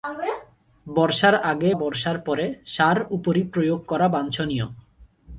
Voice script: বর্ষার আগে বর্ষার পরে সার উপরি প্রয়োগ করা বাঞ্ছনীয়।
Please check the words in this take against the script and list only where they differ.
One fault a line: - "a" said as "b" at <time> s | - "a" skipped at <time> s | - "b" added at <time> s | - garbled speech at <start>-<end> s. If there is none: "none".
none